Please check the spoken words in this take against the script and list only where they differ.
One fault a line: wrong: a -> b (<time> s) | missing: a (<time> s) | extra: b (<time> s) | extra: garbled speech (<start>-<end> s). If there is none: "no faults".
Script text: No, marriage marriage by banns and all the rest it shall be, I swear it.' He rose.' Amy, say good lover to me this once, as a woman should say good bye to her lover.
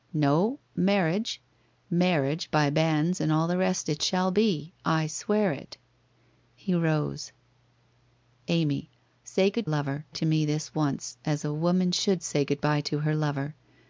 no faults